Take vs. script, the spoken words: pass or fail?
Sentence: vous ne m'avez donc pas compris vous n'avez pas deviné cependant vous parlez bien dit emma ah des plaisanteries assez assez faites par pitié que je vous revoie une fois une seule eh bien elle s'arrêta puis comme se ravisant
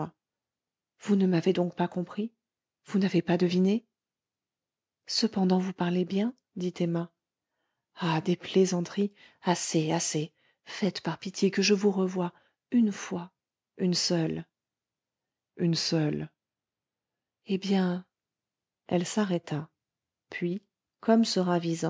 fail